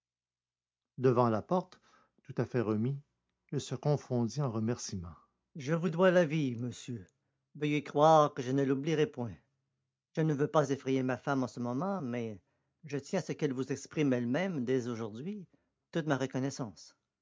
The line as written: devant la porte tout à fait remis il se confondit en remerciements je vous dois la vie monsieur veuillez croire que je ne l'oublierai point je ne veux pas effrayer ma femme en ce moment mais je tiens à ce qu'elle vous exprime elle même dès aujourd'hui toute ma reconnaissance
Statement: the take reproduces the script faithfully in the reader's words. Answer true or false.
true